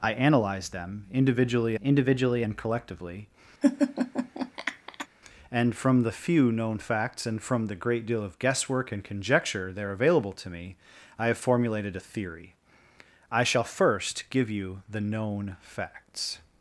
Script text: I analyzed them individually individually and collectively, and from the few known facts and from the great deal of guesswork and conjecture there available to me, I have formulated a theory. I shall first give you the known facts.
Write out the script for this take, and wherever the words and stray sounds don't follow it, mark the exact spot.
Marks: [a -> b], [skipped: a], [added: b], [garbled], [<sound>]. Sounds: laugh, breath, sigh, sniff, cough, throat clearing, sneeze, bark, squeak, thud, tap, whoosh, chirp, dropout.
I analyzed them individually individually and collectively, [laugh] and from the few known facts and from the great deal of guesswork and conjecture there available to me, I have formulated a theory. I shall first give you the known facts.